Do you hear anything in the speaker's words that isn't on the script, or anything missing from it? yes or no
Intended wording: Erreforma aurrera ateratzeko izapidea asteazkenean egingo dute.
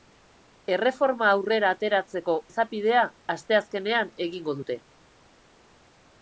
no